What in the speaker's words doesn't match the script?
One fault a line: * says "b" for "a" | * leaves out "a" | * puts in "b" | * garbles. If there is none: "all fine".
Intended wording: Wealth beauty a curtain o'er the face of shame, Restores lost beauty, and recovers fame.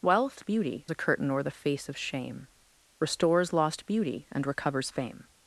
all fine